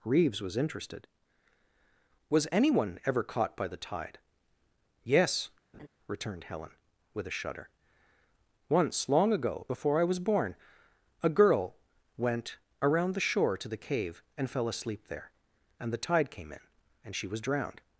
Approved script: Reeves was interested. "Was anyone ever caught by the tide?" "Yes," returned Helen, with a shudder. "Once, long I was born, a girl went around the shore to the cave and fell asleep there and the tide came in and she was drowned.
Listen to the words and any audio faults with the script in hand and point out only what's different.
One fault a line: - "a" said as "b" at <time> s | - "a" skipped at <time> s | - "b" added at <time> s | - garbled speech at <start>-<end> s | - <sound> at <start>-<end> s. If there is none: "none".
- laugh at 5.7-5.9 s
- "ago before" added at 9.3 s